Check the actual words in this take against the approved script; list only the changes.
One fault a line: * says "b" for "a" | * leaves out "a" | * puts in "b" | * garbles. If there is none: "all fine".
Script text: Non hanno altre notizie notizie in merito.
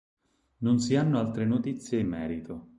* puts in "si"
* leaves out "notizie"